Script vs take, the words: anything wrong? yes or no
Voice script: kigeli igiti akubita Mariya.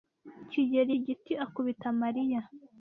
no